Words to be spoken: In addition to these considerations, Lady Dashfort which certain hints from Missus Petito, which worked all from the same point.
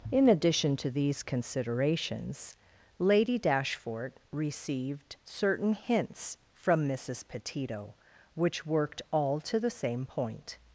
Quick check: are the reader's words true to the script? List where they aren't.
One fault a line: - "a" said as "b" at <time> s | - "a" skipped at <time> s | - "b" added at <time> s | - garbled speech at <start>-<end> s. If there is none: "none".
- "which" said as "received" at 4.3 s
- "from" said as "to" at 9.4 s